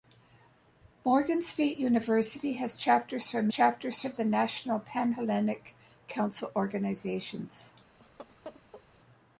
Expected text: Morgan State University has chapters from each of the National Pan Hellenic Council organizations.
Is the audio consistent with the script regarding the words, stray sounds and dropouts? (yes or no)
no